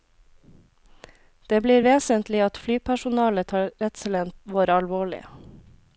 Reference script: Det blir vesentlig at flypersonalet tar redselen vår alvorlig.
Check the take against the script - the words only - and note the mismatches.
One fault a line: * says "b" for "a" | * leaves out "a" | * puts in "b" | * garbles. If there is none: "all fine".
all fine